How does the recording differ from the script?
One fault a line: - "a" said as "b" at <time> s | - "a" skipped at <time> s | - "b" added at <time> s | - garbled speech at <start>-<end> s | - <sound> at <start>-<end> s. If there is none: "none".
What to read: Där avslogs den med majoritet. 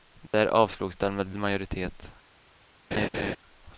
- dropout at 0.3-0.3 s
- laugh at 2.9-3.4 s